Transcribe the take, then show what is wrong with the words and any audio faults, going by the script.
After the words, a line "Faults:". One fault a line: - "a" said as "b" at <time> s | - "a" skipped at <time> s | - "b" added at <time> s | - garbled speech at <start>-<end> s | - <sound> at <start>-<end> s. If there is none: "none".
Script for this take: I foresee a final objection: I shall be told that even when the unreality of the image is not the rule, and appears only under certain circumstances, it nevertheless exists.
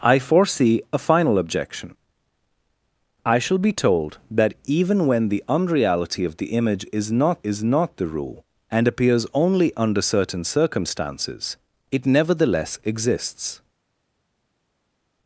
I foresee a final objection: I shall be told that even when the unreality of the image is not is not the rule, and appears only under certain circumstances, it nevertheless exists.
Faults:
- "is not" added at 7.4 s